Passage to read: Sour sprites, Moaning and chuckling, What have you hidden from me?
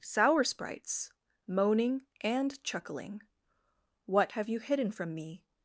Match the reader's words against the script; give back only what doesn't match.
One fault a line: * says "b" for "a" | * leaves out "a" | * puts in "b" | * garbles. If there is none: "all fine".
all fine